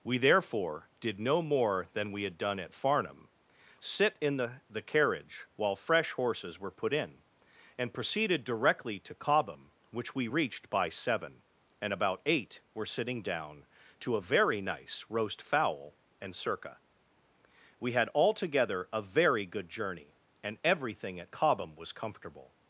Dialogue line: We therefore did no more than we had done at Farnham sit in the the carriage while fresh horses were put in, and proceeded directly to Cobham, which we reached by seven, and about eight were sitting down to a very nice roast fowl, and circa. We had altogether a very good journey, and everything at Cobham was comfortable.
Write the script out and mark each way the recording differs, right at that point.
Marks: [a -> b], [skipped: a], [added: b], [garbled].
We therefore did no more than we had done at Farnham sit in the the carriage while fresh horses were put in, and proceeded directly to Cobham, which we reached by seven, and about eight were sitting down to a very nice roast fowl, and circa. We had altogether a very good journey, and everything at Cobham was comfortable.